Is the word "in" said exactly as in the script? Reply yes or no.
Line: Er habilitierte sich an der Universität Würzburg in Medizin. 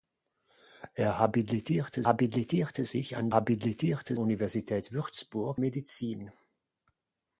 no